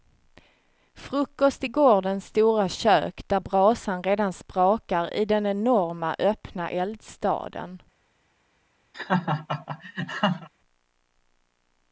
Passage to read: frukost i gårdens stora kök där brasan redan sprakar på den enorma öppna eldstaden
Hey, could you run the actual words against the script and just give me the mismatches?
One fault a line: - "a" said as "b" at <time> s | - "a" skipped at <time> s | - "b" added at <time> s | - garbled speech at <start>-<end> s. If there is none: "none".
- "på" said as "i" at 5.1 s